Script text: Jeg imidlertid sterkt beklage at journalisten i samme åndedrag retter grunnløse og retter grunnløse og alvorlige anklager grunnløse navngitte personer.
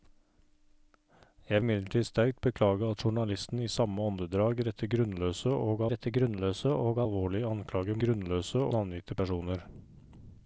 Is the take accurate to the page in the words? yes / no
yes